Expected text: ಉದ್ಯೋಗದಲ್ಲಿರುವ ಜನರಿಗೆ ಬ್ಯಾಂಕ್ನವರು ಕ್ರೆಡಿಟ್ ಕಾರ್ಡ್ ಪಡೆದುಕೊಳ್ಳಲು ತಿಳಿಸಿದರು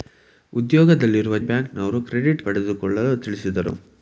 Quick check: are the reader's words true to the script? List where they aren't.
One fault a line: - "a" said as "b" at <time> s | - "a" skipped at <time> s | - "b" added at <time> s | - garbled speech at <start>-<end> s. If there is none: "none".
- "ಜನರಿಗೆ" skipped at 1.4 s
- "ಕಾರ್ಡ್" skipped at 2.4 s